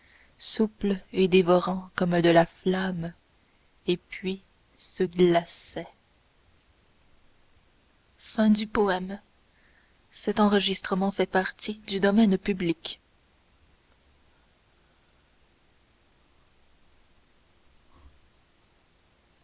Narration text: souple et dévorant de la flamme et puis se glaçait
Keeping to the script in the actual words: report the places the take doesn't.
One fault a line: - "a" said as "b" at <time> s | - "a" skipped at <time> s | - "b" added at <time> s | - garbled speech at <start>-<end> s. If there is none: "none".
- "comme" added at 1.9 s